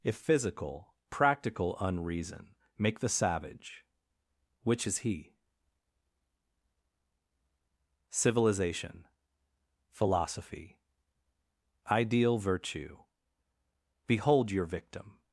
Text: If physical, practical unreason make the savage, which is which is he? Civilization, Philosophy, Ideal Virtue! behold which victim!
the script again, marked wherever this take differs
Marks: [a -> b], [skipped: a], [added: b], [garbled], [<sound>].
If physical, practical unreason make the savage, which is [skipped: which is] he? Civilization, Philosophy, Ideal Virtue! behold [which -> your] victim!